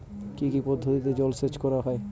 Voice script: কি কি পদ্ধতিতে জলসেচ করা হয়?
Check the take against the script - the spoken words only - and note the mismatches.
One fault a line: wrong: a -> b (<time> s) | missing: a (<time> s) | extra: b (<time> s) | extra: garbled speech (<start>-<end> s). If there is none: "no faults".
no faults